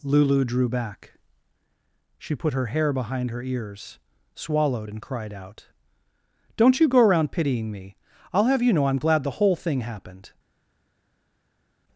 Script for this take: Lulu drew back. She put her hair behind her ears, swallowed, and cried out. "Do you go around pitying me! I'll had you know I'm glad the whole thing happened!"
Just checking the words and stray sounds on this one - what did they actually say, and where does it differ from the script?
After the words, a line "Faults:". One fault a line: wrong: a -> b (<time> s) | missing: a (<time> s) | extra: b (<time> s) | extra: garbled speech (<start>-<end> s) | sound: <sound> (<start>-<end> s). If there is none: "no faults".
Lulu drew back. She put her hair behind her ears, swallowed, and cried out. "Don't you go around pitying me! I'll have you know I'm glad the whole thing happened!"
Faults:
wrong: Do -> Don't (6.5 s)
wrong: had -> have (8.4 s)